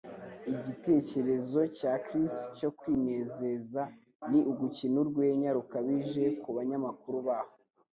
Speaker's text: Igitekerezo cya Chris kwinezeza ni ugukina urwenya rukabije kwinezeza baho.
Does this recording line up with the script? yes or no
no